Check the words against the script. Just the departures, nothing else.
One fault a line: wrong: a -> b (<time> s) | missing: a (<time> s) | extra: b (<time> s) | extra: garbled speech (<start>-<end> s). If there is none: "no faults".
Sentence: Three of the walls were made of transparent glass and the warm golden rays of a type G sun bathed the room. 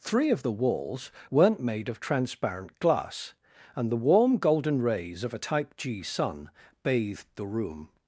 wrong: were -> weren't (1.3 s)